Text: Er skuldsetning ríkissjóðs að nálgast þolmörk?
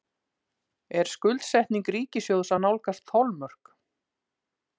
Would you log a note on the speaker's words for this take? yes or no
no